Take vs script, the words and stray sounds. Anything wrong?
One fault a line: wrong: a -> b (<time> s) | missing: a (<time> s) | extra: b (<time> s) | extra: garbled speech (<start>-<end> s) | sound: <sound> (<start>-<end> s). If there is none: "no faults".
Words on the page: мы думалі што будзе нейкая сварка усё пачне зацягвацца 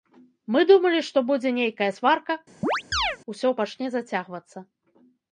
sound: chirp (2.6-3.2 s)